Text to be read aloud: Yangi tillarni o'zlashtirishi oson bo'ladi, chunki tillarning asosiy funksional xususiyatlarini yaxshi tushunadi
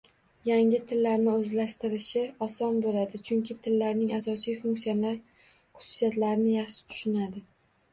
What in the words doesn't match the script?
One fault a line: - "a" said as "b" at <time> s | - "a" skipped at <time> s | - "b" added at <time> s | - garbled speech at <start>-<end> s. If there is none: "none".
none